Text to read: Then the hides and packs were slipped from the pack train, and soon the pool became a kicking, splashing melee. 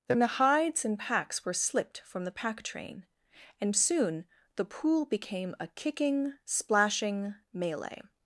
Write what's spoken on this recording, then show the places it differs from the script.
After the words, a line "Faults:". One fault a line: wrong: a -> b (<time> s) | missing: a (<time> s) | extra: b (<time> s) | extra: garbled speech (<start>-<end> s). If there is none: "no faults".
Then the hides and packs were slipped from the pack train, and soon the pool became a kicking, splashing melee.
Faults:
no faults